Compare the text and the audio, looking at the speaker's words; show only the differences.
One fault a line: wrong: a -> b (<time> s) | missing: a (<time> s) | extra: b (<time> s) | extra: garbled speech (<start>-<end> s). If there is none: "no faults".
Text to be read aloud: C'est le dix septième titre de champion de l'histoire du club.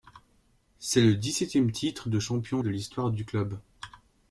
no faults